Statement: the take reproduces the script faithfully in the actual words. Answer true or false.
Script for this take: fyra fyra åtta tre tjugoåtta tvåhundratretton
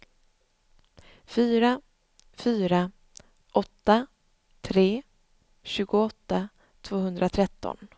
true